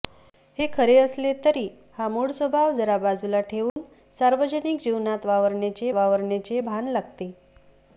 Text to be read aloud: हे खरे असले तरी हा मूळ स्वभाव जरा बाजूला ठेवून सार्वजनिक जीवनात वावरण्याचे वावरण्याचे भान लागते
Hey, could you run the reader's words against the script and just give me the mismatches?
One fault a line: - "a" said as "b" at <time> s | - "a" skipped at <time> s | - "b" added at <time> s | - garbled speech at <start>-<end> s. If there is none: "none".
none